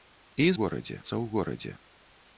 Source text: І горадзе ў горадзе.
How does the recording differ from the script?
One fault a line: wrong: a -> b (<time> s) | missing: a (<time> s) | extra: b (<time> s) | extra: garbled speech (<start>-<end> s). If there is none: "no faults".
no faults